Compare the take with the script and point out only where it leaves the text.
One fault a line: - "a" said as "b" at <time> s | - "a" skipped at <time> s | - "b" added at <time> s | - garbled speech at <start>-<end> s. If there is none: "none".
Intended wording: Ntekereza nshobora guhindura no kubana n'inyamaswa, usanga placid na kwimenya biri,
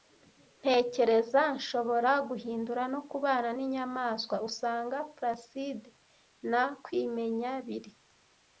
none